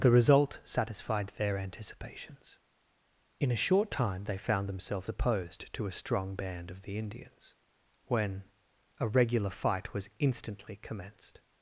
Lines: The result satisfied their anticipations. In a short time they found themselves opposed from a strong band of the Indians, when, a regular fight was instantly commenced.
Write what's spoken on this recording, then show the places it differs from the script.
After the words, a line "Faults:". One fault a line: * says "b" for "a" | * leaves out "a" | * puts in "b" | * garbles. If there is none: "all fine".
The result satisfied their anticipations. In a short time they found themselves opposed to a strong band of the Indians, when, a regular fight was instantly commenced.
Faults:
* says "to" for "from"